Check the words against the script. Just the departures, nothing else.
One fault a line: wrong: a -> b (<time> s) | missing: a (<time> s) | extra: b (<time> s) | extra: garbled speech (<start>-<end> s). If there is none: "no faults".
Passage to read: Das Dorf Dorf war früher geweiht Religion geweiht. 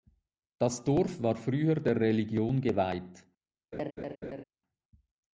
missing: Dorf (1.2 s)
wrong: geweiht -> der (1.8 s)